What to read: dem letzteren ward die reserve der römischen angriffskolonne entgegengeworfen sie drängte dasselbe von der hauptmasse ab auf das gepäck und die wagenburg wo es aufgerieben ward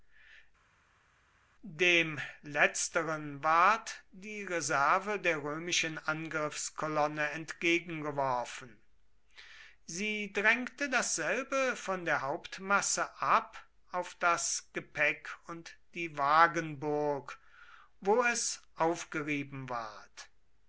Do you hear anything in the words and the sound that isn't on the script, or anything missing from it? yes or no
no